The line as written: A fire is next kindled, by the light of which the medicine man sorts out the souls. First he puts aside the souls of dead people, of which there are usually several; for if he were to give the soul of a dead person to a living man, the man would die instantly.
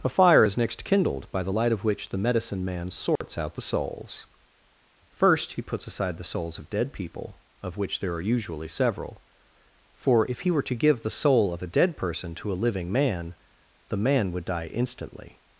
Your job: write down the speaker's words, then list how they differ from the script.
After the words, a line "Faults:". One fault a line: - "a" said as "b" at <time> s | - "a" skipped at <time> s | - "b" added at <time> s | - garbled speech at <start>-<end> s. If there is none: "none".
A fire is next kindled, by the light of which the medicine man sorts out the souls. First he puts aside the souls of dead people, of which there are usually several; for if he were to give the soul of a dead person to a living man, the man would die instantly.
Faults:
none